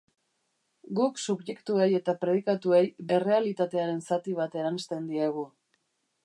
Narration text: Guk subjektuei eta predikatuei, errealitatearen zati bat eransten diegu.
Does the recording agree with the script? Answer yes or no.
yes